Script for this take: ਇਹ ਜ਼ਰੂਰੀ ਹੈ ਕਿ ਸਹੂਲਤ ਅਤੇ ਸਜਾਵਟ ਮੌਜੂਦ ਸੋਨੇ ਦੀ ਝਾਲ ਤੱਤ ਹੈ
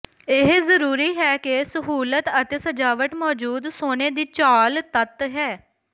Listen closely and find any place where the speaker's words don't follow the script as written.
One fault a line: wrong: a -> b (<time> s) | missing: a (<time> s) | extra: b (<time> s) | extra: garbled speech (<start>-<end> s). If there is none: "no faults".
no faults